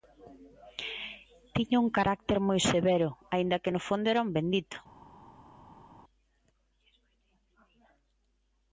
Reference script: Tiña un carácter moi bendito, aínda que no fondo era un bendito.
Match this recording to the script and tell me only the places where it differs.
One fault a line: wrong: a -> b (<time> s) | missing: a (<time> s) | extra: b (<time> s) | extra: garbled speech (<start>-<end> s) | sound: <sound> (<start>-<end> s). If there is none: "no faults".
wrong: bendito -> severo (2.7 s)